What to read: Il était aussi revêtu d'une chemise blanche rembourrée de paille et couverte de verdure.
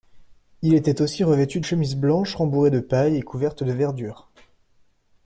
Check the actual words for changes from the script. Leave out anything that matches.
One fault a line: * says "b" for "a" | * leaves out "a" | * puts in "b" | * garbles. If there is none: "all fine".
* leaves out "d'une"